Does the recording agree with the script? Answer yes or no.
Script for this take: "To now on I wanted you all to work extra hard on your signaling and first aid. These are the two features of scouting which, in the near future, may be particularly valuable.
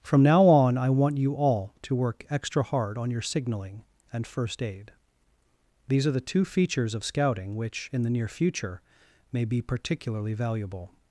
no